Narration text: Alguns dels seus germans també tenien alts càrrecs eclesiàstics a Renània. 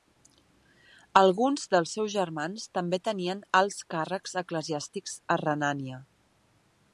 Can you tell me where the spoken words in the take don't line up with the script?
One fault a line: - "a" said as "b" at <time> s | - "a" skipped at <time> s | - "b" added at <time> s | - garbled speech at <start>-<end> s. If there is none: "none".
none